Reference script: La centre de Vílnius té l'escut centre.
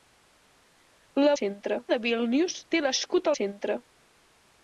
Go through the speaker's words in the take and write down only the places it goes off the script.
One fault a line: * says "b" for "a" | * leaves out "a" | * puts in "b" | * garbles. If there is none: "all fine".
all fine